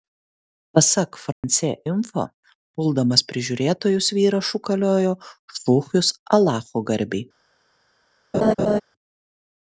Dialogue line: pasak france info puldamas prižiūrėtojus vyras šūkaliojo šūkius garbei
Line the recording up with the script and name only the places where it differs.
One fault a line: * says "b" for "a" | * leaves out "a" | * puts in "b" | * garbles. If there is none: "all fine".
* puts in "alacho"